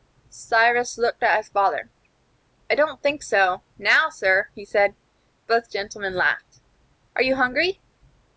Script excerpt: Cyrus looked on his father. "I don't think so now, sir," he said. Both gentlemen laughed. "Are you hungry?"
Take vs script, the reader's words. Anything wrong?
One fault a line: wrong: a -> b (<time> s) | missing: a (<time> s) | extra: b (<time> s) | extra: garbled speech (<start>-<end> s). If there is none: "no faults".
wrong: on -> at (1.2 s)